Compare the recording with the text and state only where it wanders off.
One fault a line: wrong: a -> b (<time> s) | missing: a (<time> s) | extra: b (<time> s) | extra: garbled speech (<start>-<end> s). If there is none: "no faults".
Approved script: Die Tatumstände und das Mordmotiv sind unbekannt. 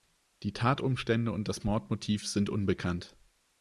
no faults